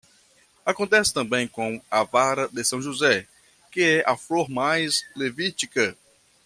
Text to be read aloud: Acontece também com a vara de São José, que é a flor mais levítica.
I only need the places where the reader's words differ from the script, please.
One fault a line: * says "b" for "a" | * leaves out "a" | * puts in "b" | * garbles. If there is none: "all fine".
all fine